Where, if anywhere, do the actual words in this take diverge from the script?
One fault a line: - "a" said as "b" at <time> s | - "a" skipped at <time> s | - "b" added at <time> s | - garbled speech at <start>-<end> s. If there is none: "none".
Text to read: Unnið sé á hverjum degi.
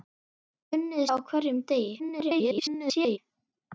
- "sé" skipped at 1.1 s
- garbled speech at 2.0-3.2 s